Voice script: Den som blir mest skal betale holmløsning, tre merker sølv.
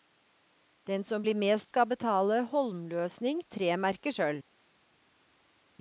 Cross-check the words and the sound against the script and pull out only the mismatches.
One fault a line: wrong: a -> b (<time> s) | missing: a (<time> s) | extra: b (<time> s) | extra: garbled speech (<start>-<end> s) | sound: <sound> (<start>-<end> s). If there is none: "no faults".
no faults